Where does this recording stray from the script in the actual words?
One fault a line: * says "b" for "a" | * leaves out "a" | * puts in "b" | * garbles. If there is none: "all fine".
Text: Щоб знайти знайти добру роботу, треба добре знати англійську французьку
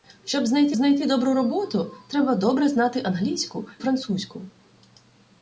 all fine